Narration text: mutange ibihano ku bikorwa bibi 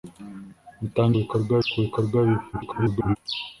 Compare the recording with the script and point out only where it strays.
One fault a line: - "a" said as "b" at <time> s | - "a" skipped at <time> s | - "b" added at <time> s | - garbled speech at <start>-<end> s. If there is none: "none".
- "ibihano" said as "bikorwa" at 1.2 s
- garbled speech at 2.5-3.2 s